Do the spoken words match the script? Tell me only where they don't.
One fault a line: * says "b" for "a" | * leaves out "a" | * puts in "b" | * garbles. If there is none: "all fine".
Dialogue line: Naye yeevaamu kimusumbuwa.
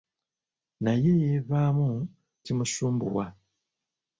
all fine